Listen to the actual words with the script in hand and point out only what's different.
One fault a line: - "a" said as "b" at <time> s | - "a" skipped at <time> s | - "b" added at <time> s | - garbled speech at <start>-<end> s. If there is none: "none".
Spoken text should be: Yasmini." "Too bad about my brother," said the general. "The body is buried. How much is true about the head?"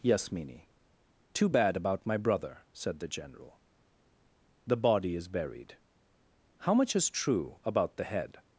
none